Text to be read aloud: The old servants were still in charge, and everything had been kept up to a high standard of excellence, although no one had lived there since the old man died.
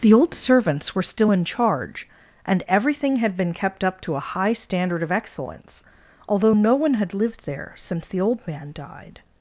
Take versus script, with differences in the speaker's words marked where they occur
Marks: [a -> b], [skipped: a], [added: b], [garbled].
The old servants were still in charge, and everything had been kept up to a high standard of excellence, although no one had lived there since the old man died.